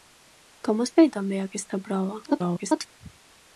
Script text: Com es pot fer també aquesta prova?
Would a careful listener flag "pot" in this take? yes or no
yes